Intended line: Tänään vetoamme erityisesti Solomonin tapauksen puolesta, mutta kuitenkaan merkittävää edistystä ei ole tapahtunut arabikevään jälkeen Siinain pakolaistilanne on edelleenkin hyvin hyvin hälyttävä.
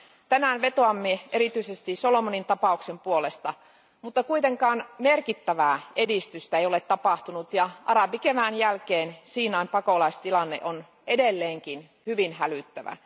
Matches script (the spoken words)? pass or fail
fail